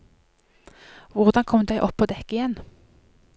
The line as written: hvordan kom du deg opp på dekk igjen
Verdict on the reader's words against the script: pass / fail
fail